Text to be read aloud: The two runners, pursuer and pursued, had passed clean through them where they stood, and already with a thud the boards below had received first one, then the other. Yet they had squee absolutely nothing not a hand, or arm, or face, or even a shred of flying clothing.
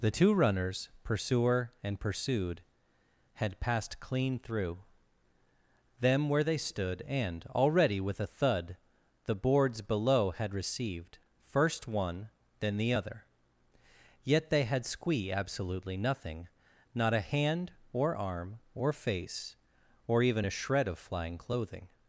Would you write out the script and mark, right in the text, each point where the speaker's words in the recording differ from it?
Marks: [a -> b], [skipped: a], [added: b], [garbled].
The two runners, pursuer and pursued, had passed clean through them where they stood, and already with a thud the boards below had received first one, then the other. Yet they had squee absolutely nothing not a hand, or arm, or face, or even a shred of flying clothing.